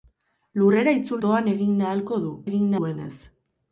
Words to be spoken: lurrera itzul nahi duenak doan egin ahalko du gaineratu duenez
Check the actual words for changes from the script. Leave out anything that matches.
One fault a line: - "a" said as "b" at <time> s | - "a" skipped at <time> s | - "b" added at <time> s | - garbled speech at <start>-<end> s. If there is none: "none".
- "nahi duenak" skipped at 1.2 s
- "gaineratu" said as "egin" at 2.5 s